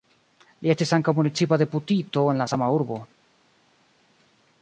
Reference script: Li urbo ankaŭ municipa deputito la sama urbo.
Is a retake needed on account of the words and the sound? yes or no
yes